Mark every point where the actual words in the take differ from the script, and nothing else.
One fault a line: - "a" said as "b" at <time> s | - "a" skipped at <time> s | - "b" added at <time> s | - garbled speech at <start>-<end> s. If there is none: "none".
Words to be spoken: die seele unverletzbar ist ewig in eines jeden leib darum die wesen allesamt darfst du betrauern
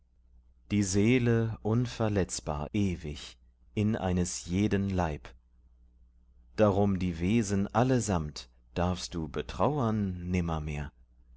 - "ist" skipped at 2.7 s